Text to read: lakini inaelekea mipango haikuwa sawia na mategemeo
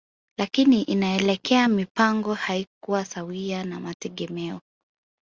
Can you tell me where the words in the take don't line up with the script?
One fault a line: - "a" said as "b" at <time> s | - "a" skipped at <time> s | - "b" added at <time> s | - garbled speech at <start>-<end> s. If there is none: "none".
none